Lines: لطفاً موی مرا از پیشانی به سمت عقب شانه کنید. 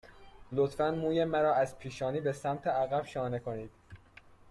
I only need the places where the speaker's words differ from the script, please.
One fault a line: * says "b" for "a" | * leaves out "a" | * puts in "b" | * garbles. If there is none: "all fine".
all fine